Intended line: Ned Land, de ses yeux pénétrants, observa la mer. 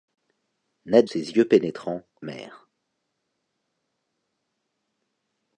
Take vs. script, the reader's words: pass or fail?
fail